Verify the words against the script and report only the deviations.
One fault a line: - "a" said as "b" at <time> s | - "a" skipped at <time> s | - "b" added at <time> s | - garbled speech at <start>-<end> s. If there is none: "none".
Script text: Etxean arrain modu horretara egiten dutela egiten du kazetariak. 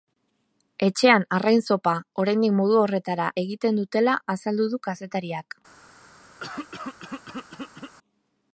- "zopa oraindik" added at 1.7 s
- "egiten" said as "azaldu" at 4.4 s